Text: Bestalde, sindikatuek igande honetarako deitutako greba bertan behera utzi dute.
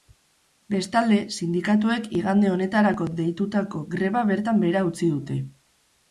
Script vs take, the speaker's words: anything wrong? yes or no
no